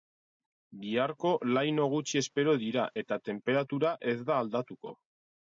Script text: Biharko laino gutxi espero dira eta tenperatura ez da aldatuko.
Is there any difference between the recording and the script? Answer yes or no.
no